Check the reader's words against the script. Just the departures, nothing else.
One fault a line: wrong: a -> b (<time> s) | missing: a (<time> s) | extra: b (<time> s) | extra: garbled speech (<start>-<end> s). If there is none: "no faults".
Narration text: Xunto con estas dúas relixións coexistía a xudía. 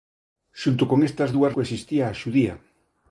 missing: relixións (1.6 s)